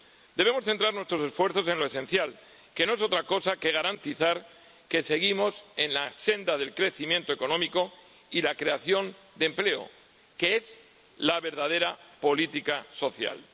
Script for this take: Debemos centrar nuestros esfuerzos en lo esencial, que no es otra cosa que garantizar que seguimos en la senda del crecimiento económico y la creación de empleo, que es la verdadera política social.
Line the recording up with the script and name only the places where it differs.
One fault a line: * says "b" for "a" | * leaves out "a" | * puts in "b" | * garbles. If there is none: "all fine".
all fine